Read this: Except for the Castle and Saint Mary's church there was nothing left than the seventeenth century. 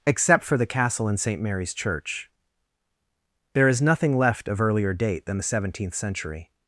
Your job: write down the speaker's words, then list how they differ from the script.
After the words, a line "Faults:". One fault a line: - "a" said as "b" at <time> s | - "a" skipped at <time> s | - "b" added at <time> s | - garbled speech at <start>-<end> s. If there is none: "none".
Except for the Castle and Saint Mary's church there is nothing left of earlier date than the seventeenth century.
Faults:
- "was" said as "is" at 3.7 s
- "of earlier date" added at 4.5 s